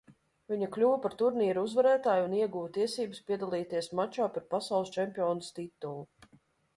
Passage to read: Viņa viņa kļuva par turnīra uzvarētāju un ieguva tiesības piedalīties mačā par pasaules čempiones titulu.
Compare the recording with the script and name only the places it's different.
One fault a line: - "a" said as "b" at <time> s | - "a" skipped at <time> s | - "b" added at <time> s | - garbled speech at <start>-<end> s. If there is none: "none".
- "viņa" skipped at 0.7 s